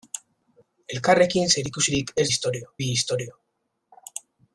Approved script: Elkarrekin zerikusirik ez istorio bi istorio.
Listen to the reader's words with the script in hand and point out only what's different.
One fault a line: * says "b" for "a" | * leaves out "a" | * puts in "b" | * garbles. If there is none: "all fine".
all fine